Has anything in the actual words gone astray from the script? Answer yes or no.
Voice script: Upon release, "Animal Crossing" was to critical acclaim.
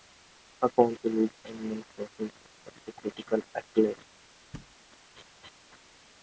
no